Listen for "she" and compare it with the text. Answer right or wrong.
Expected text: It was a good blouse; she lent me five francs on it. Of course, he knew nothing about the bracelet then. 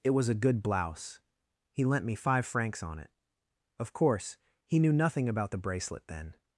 wrong